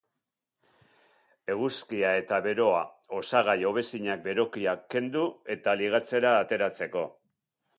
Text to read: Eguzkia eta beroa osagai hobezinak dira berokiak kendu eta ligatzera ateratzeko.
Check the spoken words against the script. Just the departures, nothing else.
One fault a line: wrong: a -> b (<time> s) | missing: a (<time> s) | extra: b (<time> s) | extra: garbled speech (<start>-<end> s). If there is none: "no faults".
missing: dira (4.2 s)